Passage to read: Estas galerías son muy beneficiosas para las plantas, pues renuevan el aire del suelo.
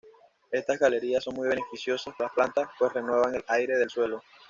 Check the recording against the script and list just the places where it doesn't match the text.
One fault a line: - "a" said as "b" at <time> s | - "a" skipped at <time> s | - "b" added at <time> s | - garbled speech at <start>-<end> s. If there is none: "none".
- "para" skipped at 2.1 s